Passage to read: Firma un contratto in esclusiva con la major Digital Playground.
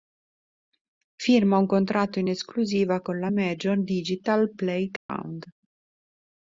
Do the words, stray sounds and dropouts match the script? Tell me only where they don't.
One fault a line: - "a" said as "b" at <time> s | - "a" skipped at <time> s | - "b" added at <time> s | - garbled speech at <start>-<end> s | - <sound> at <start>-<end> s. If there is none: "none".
- dropout at 5.0-5.1 s